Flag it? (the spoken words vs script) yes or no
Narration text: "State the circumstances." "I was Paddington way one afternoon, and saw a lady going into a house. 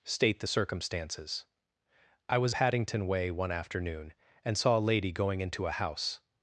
no